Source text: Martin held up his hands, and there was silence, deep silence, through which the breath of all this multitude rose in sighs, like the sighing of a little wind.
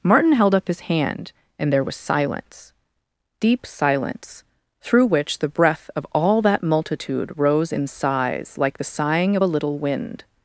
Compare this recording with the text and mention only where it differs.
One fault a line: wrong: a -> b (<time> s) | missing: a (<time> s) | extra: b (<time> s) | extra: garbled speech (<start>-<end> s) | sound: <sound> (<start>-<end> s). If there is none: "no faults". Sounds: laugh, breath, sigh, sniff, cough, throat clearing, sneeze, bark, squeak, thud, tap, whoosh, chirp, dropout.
wrong: hands -> hand (0.8 s)
wrong: this -> that (6.4 s)